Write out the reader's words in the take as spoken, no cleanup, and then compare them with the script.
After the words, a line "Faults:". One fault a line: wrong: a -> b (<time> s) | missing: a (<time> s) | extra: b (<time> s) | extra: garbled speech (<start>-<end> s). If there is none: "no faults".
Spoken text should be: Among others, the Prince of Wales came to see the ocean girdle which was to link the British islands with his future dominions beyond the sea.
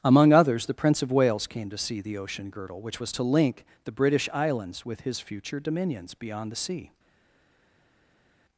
Among others, the Prince of Wales came to see the ocean girdle which was to link the British islands with his future dominions beyond the sea.
Faults:
no faults